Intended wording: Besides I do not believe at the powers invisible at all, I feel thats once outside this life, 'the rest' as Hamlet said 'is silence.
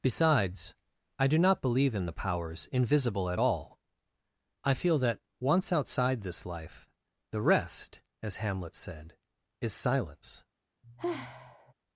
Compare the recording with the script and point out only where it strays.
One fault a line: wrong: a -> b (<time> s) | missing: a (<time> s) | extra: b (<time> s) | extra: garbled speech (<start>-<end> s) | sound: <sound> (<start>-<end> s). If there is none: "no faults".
wrong: at -> in (1.9 s)
wrong: thats -> that (5.0 s)
sound: sigh (10.8-11.7 s)